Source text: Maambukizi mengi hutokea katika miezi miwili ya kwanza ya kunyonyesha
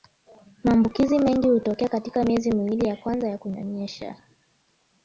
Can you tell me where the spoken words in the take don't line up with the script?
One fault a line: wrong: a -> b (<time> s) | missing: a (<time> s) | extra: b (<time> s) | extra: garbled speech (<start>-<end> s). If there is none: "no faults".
no faults